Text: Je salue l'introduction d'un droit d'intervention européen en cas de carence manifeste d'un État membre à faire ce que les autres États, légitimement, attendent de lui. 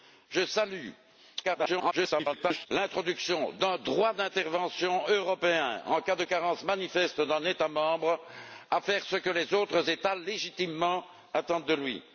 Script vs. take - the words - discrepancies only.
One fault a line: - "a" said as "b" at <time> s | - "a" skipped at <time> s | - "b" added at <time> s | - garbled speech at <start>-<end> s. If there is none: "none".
- garbled speech at 1.4-2.7 s